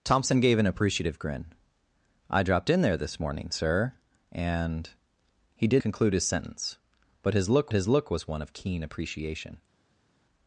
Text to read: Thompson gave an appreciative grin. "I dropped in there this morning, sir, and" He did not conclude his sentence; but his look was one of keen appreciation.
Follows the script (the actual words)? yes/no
no